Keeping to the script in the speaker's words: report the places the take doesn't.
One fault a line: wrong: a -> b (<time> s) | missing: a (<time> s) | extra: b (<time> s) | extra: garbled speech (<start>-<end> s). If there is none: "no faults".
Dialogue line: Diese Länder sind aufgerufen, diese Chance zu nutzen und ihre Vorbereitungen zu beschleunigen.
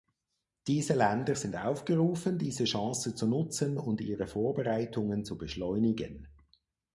no faults